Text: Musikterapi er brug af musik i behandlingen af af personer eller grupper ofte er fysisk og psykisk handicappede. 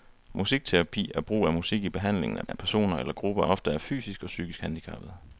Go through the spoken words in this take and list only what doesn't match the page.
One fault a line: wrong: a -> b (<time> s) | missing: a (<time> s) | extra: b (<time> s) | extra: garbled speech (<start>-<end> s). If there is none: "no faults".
no faults